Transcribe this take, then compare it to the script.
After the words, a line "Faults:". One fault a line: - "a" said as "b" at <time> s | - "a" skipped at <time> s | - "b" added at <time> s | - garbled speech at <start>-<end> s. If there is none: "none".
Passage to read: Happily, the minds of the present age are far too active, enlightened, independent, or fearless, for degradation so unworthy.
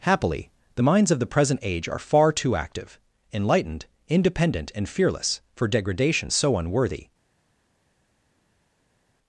Happily, the minds of the present age are far too active, enlightened, independent, and fearless, for degradation so unworthy.
Faults:
- "or" said as "and" at 4.7 s